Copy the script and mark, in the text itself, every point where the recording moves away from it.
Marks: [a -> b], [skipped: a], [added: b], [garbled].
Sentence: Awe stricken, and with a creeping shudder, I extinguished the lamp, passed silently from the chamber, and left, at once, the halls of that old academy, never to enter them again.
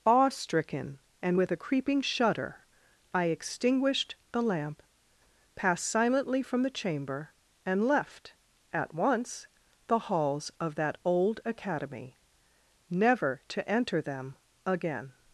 Awe stricken, and with a creeping shudder, I extinguished the lamp, passed silently from the chamber, and left, at once, the halls of that old academy, never to enter them again.